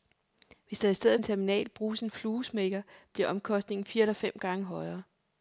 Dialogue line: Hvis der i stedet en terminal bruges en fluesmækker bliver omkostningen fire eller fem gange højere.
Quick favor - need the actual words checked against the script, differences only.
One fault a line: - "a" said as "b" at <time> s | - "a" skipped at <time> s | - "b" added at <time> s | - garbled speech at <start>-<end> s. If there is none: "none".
none